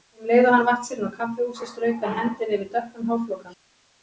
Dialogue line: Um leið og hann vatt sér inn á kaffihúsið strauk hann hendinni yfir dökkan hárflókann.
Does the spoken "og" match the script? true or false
true